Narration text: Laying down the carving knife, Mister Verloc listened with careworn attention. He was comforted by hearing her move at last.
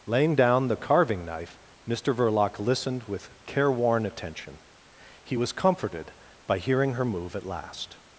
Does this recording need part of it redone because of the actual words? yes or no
no